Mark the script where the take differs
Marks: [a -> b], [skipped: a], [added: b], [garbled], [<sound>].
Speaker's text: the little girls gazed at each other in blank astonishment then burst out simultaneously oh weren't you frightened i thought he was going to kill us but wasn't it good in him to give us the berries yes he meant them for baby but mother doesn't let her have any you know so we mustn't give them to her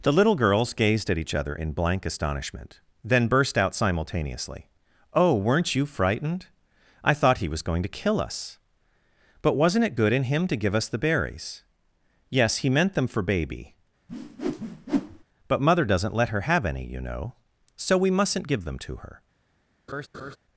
the little girls gazed at each other in blank astonishment then burst out simultaneously oh weren't you frightened i thought he was going to kill us but wasn't it good in him to give us the berries yes he meant them for baby [whoosh] but mother doesn't let her have any you know so we mustn't give them to her [laugh]